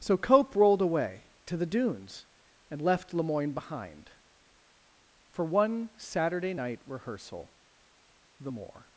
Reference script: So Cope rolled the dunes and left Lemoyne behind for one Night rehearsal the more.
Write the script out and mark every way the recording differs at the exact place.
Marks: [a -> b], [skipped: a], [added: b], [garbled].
So Cope rolled [added: away to] the dunes and left Lemoyne behind for one [added: Saturday] Night rehearsal the more.